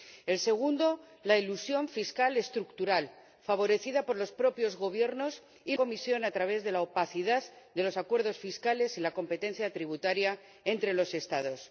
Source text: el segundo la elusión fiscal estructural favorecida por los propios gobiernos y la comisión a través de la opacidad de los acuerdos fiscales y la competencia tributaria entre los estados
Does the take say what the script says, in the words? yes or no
no